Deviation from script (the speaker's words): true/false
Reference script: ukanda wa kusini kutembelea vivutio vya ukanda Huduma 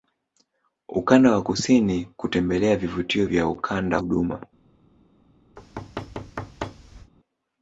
false